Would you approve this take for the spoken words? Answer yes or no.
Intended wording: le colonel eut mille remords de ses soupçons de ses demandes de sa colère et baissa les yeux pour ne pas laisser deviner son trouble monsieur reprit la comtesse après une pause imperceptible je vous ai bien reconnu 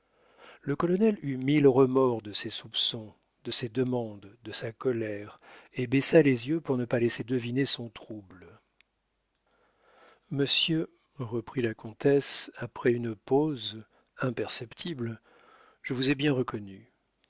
yes